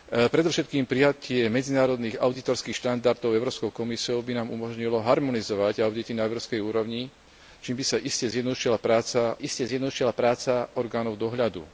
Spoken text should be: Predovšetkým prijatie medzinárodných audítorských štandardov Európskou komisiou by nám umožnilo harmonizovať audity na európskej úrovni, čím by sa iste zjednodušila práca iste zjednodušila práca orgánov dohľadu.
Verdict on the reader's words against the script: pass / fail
pass